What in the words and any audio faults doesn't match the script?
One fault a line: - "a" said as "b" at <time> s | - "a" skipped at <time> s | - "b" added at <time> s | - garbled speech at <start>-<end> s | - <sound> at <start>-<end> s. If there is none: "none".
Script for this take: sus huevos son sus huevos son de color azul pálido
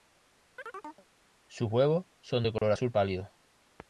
- chirp at 0.6-1.1 s
- "sus huevos son" skipped at 2.4 s
- dropout at 2.6-2.6 s